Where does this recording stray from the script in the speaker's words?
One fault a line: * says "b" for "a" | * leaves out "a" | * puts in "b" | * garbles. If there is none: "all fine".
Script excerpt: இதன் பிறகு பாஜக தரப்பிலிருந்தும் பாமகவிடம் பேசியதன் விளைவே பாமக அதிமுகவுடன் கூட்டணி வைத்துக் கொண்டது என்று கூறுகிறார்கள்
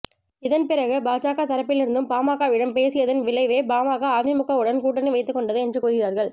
all fine